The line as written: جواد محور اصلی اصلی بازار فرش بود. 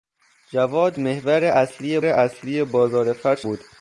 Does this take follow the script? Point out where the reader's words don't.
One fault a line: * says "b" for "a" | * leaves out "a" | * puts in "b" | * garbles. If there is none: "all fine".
all fine